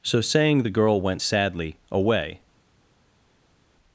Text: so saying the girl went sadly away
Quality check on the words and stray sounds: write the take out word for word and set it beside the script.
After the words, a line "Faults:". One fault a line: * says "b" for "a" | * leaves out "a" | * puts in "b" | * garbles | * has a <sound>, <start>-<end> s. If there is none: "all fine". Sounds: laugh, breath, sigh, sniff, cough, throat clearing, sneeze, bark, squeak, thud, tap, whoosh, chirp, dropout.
so saying the girl went sadly away
Faults:
all fine